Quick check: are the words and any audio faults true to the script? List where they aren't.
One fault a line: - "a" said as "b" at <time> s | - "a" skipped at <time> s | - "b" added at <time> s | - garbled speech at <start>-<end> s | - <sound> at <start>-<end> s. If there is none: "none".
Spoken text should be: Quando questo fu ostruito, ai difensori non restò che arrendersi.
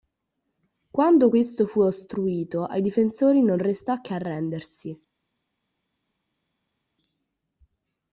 none